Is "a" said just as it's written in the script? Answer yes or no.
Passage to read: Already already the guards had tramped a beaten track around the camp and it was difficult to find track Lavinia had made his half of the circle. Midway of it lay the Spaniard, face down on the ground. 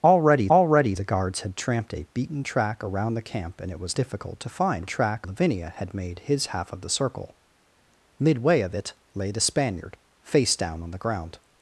yes